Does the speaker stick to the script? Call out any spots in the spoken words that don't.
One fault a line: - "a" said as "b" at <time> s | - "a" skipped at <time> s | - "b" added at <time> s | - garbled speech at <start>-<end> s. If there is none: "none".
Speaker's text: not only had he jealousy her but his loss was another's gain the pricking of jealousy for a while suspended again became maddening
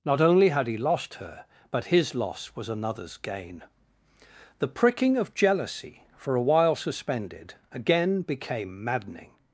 - "jealousy" said as "lost" at 0.8 s